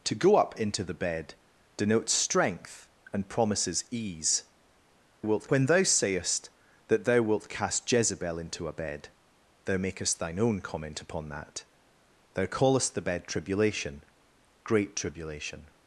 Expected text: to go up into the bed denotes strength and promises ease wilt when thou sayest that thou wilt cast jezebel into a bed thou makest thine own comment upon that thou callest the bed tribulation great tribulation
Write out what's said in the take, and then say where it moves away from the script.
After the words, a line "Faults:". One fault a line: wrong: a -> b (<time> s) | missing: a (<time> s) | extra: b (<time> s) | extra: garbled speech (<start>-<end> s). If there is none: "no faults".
to go up into the bed denotes strength and promises ease wilt when thou sayest that thou wilt cast jezebel into a bed thou makest thine own comment upon that thou callest the bed tribulation great tribulation
Faults:
no faults